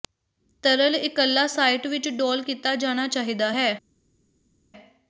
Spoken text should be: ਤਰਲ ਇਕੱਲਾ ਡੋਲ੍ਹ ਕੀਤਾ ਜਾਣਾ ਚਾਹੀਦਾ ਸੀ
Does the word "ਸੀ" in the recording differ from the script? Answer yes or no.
yes